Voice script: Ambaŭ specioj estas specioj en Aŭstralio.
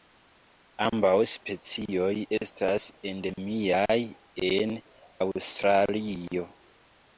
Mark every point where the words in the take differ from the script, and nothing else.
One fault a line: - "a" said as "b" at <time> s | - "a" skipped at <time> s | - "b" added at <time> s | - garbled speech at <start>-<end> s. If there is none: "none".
- "specioj" said as "endemiaj" at 3.1 s